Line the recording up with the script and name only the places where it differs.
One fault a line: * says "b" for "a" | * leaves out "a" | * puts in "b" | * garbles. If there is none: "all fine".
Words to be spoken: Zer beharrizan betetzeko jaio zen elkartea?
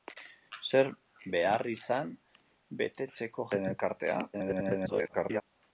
* leaves out "jaio"
* garbles